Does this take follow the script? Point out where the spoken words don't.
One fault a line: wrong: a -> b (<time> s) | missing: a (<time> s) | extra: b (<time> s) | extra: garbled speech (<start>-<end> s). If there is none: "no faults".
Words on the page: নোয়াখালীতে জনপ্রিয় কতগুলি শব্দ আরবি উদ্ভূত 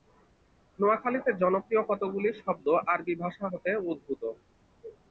extra: ভাষা হতে (3.2 s)